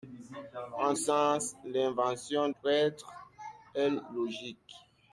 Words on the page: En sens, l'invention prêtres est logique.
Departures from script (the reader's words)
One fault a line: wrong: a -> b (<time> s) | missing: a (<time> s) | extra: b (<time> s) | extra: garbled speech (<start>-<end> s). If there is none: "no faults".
no faults